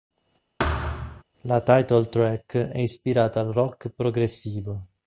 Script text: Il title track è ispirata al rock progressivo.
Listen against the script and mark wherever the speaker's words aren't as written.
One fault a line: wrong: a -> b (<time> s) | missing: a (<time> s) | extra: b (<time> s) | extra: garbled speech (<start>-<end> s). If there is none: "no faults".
wrong: Il -> La (1.4 s)